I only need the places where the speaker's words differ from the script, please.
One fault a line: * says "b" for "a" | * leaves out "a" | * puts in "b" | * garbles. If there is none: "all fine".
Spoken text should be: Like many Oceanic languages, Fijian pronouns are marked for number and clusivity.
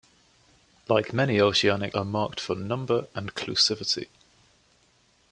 * leaves out "languages Fijian pronouns"